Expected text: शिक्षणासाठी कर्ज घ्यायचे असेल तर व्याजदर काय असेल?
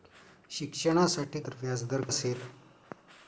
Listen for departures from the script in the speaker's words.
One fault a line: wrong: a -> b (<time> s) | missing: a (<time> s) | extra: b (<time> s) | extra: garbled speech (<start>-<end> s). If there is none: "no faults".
missing: कर्ज घ्यायचे असेल (1.4 s)
missing: काय (2.0 s)